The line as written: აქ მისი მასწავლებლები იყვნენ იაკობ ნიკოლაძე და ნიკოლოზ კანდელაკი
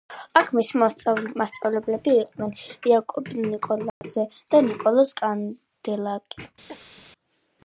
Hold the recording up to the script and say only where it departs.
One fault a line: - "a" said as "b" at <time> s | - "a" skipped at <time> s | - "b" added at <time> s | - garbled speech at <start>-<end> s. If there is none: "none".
none